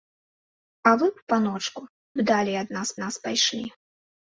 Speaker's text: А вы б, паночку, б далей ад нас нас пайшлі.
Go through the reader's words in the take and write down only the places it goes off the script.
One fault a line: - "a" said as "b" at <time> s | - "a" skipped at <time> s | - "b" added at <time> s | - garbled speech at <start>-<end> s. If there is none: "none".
none